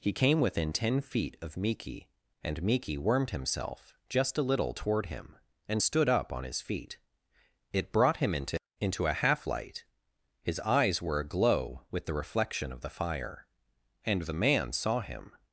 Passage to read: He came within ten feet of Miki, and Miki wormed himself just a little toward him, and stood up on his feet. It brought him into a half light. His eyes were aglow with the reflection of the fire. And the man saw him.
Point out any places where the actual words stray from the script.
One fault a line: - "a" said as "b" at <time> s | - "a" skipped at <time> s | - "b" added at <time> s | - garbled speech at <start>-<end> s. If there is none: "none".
- "into" added at 8.8 s